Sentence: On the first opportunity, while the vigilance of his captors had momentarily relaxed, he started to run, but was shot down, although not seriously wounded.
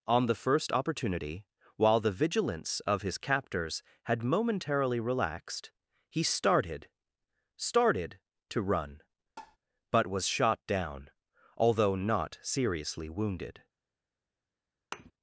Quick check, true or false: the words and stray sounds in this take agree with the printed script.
false